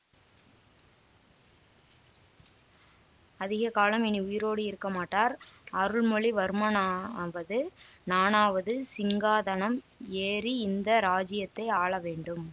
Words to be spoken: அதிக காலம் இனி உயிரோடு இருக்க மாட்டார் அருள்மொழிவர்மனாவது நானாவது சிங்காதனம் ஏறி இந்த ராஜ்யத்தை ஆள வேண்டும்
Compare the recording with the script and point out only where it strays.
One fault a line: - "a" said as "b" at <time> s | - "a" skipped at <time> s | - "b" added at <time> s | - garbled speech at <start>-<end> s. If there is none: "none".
none